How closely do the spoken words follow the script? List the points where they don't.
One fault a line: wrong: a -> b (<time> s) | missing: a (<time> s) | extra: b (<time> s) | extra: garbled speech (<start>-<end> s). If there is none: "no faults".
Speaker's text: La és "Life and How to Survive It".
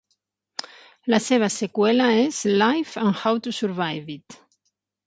extra: seva seqüela (1.2 s)